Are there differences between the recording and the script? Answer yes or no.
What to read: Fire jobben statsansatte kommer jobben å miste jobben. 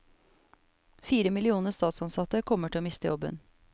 yes